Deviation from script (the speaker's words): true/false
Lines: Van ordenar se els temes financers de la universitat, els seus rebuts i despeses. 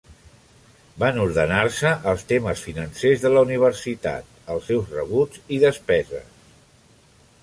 false